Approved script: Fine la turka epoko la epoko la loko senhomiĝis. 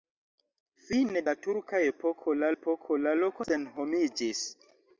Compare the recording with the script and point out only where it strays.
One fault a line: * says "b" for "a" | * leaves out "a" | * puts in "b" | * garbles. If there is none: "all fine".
all fine